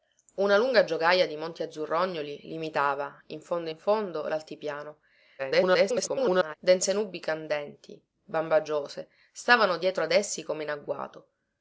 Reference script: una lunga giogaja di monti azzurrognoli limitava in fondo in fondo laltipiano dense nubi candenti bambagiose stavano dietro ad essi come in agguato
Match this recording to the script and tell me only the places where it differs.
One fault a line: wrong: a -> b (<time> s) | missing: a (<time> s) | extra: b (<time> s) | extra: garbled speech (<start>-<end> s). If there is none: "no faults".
extra: garbled speech (5.4-6.5 s)